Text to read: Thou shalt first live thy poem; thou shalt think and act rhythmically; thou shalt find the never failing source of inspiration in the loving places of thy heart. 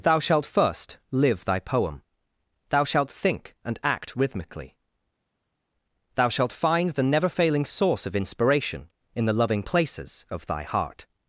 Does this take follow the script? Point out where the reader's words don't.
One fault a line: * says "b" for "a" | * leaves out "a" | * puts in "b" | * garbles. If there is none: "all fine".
all fine